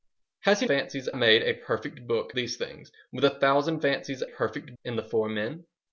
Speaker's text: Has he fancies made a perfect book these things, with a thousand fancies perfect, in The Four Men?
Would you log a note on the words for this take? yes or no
no